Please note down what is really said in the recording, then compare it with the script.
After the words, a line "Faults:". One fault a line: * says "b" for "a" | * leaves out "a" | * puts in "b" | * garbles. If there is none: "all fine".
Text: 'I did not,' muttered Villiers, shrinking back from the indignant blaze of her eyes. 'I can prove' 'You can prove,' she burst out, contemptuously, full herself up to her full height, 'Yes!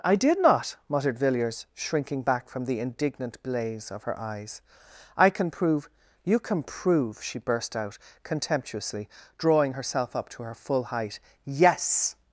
'I did not,' muttered Villiers, shrinking back from the indignant blaze of her eyes. 'I can prove' 'You can prove,' she burst out, contemptuously, drawing herself up to her full height, 'Yes!
Faults:
* says "drawing" for "full"